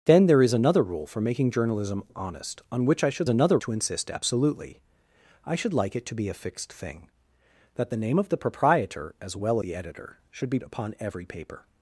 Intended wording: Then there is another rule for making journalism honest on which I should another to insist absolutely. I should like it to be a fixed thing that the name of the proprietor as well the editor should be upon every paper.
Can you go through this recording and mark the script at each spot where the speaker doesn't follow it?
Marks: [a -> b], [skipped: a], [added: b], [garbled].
Then there is another rule for making journalism honest on which I should another to insist absolutely. I should like it to be a fixed thing that the name of the proprietor as well the editor should be upon every paper.